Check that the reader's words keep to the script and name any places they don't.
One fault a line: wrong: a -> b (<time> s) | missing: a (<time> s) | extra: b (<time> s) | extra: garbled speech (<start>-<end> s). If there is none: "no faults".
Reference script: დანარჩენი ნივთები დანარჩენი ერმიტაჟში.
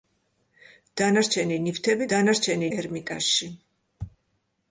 no faults